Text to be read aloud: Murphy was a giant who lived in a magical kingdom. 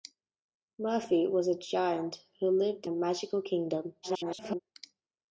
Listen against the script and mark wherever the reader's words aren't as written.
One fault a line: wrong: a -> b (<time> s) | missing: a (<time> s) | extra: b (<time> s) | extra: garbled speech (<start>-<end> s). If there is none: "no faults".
missing: in (2.9 s)
extra: garbled speech (4.0-4.6 s)